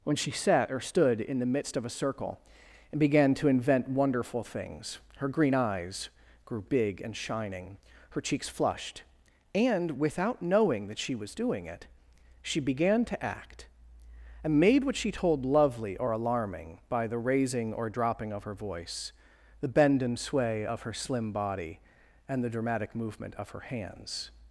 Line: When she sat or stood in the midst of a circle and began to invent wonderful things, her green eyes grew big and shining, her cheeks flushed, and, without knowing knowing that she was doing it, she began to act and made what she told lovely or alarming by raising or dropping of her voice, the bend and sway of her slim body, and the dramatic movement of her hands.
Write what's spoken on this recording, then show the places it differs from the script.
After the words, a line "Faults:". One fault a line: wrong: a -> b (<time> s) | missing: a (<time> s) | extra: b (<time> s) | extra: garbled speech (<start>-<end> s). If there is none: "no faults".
When she sat or stood in the midst of a circle and began to invent wonderful things, her green eyes grew big and shining, her cheeks flushed, and, without knowing that she was doing it, she began to act and made what she told lovely or alarming by the raising or dropping of her voice, the bend and sway of her slim body, and the dramatic movement of her hands.
Faults:
missing: knowing (10.9 s)
extra: the (17.1 s)